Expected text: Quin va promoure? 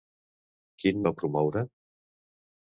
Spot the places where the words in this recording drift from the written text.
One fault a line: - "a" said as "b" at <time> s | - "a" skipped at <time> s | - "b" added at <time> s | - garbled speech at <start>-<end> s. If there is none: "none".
none